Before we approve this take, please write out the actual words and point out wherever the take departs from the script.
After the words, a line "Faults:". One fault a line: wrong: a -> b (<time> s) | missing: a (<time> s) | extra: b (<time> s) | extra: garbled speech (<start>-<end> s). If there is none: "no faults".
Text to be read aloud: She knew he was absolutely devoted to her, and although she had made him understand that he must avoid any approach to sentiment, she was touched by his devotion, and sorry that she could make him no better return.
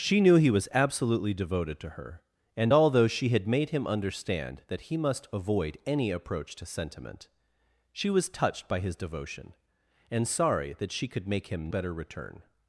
She knew he was absolutely devoted to her, and although she had made him understand that he must avoid any approach to sentiment, she was touched by his devotion, and sorry that she could make him better return.
Faults:
missing: no (11.7 s)